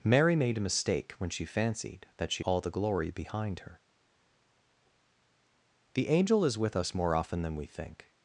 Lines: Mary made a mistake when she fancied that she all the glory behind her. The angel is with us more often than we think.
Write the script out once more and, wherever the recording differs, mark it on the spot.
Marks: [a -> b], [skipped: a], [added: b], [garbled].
Mary made a mistake when she fancied that she all the glory behind her. The angel is with us more often than we think.